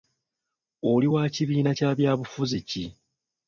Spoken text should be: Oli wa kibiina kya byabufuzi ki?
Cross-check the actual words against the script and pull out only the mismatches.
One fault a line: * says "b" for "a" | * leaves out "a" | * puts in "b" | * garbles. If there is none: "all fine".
all fine